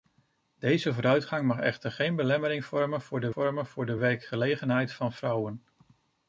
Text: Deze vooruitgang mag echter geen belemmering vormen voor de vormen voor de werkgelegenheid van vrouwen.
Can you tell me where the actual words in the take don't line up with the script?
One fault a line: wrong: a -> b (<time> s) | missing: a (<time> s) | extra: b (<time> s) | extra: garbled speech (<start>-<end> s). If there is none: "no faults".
no faults